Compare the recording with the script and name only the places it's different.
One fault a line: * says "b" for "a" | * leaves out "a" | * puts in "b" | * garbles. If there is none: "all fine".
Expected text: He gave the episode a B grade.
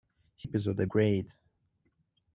* leaves out "gave the"
* leaves out "B"